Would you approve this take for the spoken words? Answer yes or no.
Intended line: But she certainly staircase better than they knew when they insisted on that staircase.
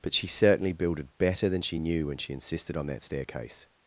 no